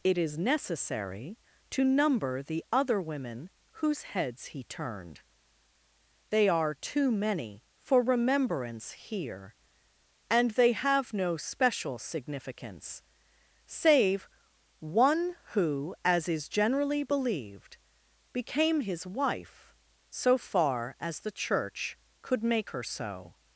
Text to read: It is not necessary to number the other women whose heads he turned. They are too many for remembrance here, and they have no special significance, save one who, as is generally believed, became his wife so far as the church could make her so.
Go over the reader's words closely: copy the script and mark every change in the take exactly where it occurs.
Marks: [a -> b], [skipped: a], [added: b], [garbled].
It is [skipped: not] necessary to number the other women whose heads he turned. They are too many for remembrance here, and they have no special significance, save one who, as is generally believed, became his wife so far as the church could make her so.